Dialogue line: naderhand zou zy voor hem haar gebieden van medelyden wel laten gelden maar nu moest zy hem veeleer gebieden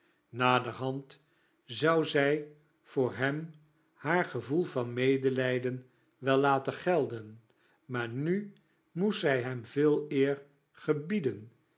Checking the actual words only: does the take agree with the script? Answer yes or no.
no